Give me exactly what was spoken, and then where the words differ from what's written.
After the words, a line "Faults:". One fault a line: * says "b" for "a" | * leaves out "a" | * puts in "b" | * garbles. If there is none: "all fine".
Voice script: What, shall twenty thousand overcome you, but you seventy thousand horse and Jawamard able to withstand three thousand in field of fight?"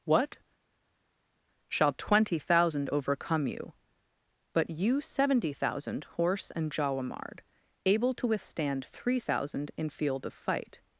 What, shall twenty thousand overcome you, but you seventy thousand horse and Jawamard able to withstand three thousand in field of fight?"
Faults:
all fine